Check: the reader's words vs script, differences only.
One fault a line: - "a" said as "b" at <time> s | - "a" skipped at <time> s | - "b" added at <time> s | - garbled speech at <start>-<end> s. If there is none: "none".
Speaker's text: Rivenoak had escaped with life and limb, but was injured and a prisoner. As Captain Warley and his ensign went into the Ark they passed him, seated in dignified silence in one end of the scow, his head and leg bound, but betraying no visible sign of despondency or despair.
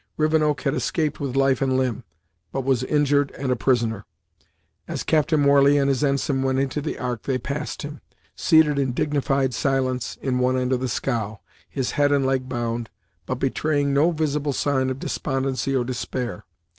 none